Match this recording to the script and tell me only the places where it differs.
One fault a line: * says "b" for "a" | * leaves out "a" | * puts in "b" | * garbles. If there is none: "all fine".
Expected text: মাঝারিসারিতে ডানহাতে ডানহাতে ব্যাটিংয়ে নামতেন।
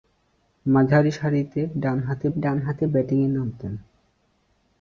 all fine